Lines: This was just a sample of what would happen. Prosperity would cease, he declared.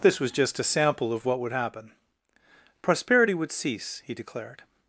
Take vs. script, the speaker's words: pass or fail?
pass